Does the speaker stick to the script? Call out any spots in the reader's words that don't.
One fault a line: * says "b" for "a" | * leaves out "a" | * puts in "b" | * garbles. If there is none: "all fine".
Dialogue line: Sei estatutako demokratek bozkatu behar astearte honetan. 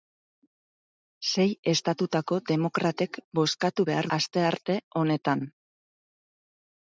all fine